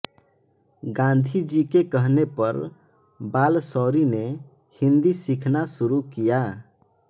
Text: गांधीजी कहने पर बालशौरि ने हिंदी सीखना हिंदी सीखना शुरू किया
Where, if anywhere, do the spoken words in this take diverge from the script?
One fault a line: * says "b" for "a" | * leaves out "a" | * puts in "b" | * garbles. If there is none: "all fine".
* puts in "के"
* leaves out "हिंदी सीखना"